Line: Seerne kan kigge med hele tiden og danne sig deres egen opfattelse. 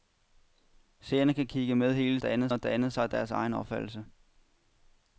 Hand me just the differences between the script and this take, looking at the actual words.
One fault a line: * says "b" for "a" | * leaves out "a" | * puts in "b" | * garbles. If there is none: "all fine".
* says "danne" for "tiden"